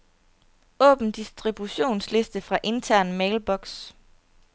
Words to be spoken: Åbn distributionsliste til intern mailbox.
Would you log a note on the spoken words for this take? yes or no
yes